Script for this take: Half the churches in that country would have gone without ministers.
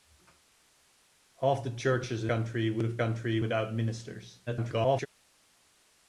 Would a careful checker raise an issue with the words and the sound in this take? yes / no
yes